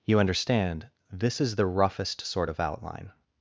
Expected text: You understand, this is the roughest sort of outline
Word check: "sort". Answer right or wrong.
right